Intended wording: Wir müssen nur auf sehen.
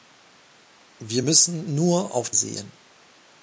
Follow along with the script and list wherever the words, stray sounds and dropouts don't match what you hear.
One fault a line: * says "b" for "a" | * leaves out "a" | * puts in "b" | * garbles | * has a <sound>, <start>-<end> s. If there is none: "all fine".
all fine